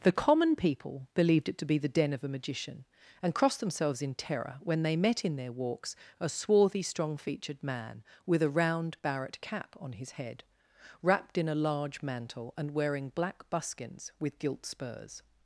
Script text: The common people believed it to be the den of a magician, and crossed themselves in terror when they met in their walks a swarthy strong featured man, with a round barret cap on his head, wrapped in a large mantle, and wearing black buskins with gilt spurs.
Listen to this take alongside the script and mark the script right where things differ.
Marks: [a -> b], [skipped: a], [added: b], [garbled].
The common people believed it to be the den of a magician, and crossed themselves in terror when they met in their walks a swarthy strong featured man, with a round barret cap on his head, wrapped in a large mantle, and wearing black buskins with gilt spurs.